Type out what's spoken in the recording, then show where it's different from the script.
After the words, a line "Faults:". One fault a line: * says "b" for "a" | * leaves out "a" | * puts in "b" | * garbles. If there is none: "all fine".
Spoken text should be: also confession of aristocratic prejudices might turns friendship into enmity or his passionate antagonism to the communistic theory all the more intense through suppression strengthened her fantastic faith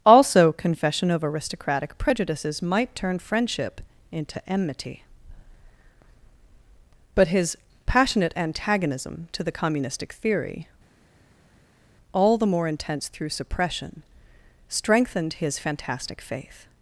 also confession of aristocratic prejudices might turn friendship into enmity but his passionate antagonism to the communistic theory all the more intense through suppression strengthened his fantastic faith
Faults:
* says "turn" for "turns"
* says "but" for "or"
* says "his" for "her"